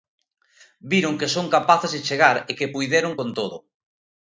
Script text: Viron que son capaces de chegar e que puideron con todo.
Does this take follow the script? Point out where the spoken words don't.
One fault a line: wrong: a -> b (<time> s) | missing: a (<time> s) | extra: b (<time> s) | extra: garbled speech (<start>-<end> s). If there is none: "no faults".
no faults